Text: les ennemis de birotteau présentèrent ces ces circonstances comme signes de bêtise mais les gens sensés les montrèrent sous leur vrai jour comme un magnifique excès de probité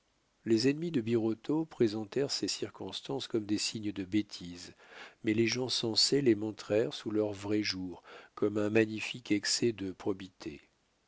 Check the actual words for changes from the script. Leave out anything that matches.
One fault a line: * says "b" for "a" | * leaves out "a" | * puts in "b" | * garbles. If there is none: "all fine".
* leaves out "ces"
* puts in "des"